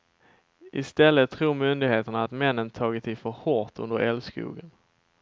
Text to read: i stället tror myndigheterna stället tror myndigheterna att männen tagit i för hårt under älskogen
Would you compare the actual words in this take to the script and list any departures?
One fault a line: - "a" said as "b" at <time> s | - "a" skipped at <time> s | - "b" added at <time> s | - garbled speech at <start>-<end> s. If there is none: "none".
- "stället tror myndigheterna" skipped at 2.2 s